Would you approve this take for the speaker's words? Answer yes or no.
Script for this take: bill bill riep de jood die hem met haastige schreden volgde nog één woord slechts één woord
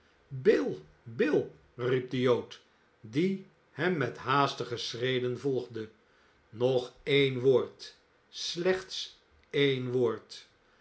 yes